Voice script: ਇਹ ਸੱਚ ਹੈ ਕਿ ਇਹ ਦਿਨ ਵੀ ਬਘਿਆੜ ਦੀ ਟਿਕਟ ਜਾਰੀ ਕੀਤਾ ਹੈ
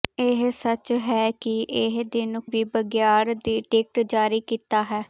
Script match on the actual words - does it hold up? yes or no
yes